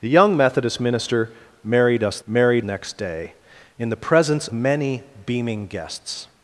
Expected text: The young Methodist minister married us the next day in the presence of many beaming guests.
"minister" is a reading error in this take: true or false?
false